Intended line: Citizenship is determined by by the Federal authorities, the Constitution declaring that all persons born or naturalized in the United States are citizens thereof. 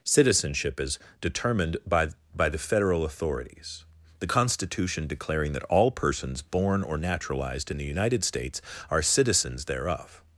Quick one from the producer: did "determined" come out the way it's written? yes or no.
yes